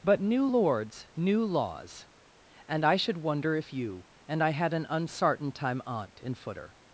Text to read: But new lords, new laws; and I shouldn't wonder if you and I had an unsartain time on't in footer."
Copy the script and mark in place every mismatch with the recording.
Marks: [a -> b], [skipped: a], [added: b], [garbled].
But new lords, new laws; and I [shouldn't -> should] wonder if you and I had an unsartain time on't in footer."